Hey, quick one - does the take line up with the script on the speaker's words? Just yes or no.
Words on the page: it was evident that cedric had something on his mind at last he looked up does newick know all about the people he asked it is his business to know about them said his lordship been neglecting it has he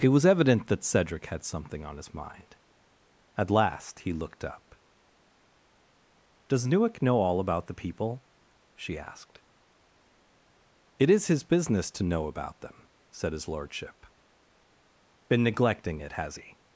no